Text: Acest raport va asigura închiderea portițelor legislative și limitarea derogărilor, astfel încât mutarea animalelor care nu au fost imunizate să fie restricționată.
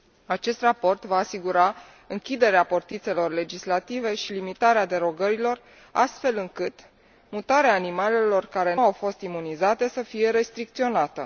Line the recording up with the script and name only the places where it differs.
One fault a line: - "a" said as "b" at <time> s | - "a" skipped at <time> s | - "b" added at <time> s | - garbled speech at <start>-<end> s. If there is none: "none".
- "nu" skipped at 8.8 s